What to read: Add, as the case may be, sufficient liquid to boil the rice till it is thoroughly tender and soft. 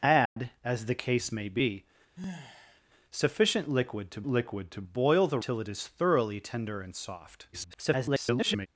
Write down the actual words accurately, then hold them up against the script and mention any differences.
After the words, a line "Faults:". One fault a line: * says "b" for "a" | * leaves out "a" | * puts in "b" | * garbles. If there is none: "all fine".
Add, as the case may be, sufficient liquid to liquid to boil the till it is thoroughly tender and soft. [garbled]
Faults:
* puts in "liquid to"
* leaves out "rice"
* garbles